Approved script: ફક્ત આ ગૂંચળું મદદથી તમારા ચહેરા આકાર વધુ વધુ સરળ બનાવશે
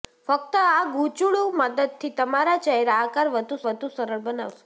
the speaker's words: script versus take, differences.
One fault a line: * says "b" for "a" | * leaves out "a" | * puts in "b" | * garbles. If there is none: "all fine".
all fine